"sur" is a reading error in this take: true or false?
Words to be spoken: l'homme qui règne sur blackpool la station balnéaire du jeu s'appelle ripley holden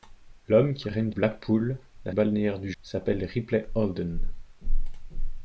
true